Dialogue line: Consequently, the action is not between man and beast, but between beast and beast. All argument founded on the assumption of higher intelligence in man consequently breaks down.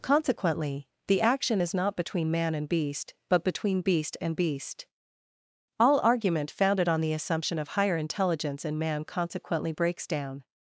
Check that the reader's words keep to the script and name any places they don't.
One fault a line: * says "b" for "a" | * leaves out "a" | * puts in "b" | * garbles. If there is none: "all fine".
all fine